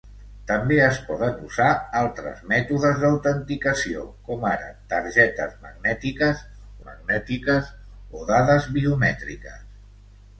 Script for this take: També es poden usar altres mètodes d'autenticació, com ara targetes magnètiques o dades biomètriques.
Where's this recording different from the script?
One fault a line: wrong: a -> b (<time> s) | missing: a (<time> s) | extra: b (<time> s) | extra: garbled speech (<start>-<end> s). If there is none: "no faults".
extra: magnètiques (6.9 s)